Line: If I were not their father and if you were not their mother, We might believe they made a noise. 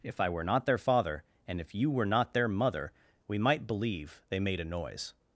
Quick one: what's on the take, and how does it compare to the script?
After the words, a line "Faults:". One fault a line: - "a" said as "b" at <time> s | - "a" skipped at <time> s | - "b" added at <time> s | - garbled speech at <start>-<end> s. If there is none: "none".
If I were not their father and if you were not their mother, We might believe they made a noise.
Faults:
none